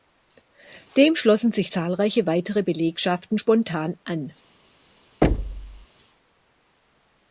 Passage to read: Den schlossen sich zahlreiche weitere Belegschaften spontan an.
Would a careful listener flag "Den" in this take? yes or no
yes